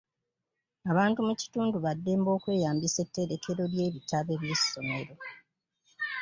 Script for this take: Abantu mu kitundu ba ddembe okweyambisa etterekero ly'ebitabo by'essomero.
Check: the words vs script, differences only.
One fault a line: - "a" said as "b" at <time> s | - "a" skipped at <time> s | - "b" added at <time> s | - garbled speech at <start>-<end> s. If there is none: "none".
none